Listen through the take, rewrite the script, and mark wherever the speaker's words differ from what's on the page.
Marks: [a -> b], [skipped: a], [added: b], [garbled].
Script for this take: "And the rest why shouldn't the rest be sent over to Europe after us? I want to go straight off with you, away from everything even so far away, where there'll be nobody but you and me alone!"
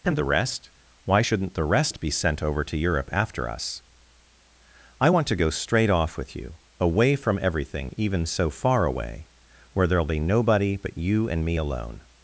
"And the rest why shouldn't the rest be sent over to Europe after us? I want to go straight off with you, away from everything even so far away, where there'll be nobody but you and me alone!"